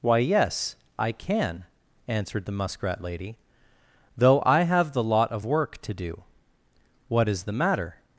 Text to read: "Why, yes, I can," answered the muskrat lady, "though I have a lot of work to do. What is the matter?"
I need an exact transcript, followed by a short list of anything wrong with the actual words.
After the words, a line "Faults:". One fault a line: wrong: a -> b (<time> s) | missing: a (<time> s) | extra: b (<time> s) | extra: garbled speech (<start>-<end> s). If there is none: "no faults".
"Why, yes, I can," answered the muskrat lady, "though I have the lot of work to do. What is the matter?"
Faults:
wrong: a -> the (4.9 s)